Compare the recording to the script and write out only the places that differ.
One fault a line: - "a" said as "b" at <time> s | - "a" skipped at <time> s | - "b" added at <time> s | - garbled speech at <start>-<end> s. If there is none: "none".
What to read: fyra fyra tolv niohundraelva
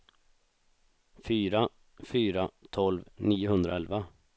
none